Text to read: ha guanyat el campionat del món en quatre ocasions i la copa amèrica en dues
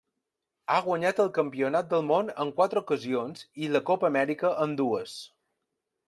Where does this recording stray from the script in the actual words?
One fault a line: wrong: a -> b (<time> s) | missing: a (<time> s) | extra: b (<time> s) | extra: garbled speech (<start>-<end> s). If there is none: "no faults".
no faults